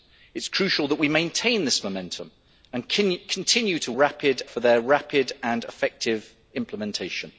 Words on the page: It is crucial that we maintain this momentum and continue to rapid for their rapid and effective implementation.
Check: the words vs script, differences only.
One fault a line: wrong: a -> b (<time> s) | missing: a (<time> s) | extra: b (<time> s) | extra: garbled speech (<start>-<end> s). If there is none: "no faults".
no faults